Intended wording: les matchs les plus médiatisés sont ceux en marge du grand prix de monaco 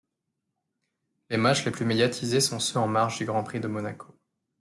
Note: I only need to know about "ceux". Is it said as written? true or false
true